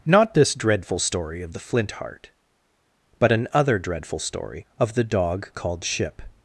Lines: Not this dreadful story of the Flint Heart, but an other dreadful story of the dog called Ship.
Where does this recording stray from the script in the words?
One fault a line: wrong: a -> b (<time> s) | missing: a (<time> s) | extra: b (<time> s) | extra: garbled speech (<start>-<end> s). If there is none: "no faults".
no faults